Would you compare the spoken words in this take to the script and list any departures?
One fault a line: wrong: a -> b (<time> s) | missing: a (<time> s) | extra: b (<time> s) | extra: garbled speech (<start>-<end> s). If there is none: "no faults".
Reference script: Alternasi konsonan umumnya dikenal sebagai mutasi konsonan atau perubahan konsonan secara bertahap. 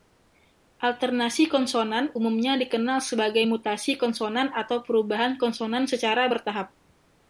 no faults